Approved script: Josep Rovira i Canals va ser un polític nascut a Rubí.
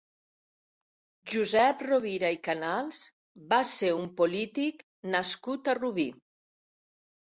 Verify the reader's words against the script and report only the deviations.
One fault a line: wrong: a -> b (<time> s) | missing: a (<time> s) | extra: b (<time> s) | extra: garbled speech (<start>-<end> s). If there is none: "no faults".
no faults